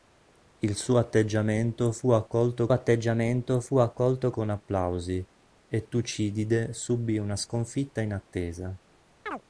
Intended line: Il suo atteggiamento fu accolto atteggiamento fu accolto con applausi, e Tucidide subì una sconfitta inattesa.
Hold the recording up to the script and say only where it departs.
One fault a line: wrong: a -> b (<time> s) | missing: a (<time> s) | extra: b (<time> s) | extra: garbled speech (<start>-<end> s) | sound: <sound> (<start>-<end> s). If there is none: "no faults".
sound: chirp (9.3-9.4 s)